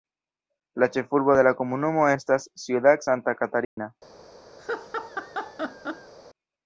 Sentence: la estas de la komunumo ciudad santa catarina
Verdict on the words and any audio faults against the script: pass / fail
fail